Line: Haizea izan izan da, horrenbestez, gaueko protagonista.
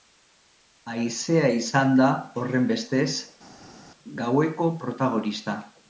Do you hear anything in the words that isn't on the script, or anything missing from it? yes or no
yes